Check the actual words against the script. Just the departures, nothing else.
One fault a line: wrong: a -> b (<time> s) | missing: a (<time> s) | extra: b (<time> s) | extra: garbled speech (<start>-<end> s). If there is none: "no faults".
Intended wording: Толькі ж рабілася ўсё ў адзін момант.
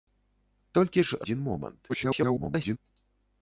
missing: рабілася ўсё ў (1.2 s)
extra: garbled speech (1.9-2.8 s)